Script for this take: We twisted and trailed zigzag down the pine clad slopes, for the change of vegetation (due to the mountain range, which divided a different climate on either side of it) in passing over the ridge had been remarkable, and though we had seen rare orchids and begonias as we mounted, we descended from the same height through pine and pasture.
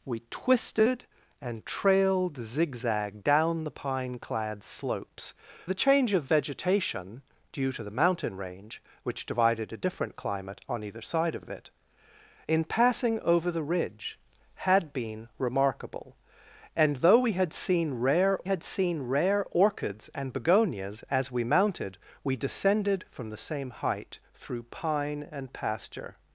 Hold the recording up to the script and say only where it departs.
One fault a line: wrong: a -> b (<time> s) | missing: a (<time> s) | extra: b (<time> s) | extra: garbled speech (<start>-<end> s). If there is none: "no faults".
missing: for (5.3 s)
extra: of (11.4 s)
extra: had seen rare (18.4 s)